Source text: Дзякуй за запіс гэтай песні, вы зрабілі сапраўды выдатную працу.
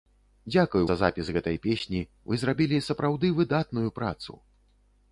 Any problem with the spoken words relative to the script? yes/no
no